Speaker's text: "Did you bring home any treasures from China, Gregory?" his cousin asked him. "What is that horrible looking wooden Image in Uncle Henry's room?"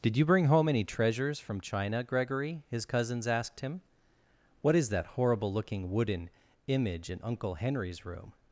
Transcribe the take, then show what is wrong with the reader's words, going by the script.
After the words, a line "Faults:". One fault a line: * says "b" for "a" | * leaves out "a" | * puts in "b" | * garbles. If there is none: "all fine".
"Did you bring home any treasures from China, Gregory?" his cousins asked him. "What is that horrible looking wooden Image in Uncle Henry's room?"
Faults:
* says "cousins" for "cousin"